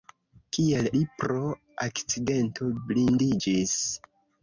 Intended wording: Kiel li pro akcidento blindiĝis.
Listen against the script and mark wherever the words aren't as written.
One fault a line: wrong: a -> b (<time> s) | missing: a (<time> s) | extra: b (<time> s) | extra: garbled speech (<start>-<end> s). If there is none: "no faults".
no faults